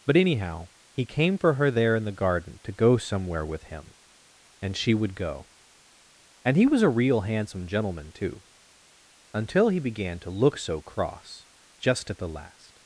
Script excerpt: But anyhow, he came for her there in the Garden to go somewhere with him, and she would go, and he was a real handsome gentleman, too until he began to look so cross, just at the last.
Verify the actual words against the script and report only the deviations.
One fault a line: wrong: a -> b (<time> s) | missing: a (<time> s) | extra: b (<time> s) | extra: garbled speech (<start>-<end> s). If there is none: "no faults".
no faults